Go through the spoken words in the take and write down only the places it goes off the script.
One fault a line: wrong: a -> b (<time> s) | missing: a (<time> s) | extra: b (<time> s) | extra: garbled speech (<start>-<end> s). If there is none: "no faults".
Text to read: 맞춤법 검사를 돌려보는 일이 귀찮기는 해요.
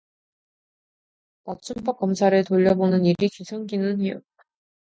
no faults